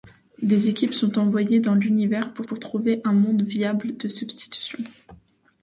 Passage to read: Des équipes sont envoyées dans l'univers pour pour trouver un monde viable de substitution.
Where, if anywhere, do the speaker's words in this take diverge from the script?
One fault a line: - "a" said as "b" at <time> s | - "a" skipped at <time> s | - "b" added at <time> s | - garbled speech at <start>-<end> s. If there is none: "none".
none